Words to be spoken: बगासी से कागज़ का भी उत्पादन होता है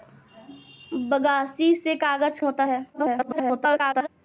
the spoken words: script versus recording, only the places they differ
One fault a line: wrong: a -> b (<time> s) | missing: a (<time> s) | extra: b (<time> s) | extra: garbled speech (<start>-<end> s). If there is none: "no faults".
missing: का भी उत्पादन (2.4 s)
extra: garbled speech (2.9-4.1 s)